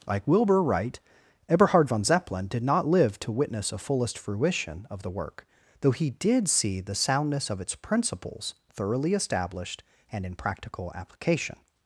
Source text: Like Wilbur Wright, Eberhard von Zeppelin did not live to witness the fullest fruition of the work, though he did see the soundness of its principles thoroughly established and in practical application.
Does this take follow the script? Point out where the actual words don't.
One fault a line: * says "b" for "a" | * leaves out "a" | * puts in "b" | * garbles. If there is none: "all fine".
* says "a" for "the"